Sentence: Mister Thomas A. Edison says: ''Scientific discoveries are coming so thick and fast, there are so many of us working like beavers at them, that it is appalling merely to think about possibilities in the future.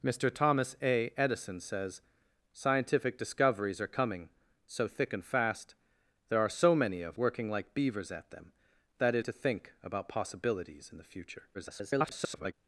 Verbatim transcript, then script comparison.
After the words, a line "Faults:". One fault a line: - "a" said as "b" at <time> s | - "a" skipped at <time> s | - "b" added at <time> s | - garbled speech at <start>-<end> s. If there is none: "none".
Mister Thomas A. Edison says: ''Scientific discoveries are coming so thick and fast, there are so many of working like beavers at them, that it to think about possibilities in the future. [garbled]
Faults:
- "us" skipped at 7.2 s
- "is appalling merely" skipped at 9.2 s
- garbled speech at 11.5-12.5 s